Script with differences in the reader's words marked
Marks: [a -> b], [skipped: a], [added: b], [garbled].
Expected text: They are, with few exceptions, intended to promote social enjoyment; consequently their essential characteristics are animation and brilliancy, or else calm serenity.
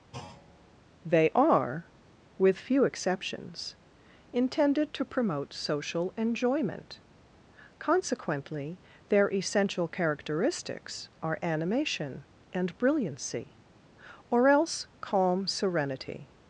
They are, with few exceptions, intended to promote social enjoyment; consequently their essential characteristics are animation and brilliancy, or else calm serenity.